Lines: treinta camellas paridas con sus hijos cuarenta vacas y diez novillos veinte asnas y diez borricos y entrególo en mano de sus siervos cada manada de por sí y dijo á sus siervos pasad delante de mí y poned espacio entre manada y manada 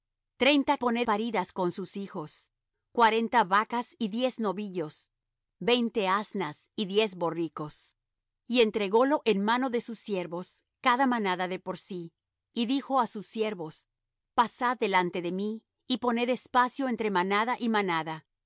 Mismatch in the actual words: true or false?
true